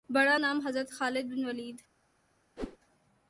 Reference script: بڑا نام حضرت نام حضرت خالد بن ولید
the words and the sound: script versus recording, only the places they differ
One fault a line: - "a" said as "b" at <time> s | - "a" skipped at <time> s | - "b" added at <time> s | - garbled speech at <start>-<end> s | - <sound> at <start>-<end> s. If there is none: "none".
- "نام حضرت" skipped at 0.9 s
- whoosh at 2.6-2.8 s